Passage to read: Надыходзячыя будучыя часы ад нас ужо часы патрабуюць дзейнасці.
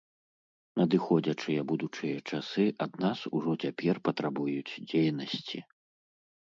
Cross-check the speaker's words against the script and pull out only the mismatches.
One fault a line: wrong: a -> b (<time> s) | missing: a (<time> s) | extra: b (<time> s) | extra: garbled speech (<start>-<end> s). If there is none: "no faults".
wrong: часы -> цяпер (3.7 s)